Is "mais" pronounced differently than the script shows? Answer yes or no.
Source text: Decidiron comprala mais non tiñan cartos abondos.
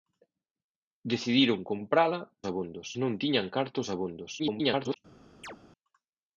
yes